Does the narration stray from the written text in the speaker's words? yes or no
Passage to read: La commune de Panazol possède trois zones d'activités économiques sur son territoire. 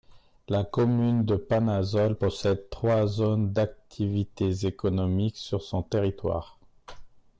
no